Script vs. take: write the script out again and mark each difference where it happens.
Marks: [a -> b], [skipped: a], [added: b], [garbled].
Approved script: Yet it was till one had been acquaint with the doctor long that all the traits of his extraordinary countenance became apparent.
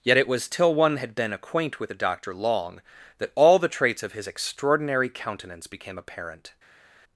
Yet it was till one had been acquaint with the doctor long that all the traits of his extraordinary countenance became apparent.